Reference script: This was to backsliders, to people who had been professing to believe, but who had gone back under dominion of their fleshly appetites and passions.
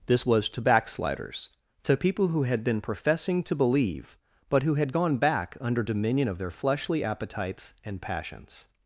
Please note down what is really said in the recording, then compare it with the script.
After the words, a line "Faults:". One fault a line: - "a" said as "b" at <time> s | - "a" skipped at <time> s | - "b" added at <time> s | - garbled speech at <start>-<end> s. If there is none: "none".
This was to backsliders, to people who had been professing to believe, but who had gone back under dominion of their fleshly appetites and passions.
Faults:
none